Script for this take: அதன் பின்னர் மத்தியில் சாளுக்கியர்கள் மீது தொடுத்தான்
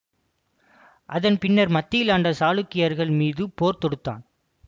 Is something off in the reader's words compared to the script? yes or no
yes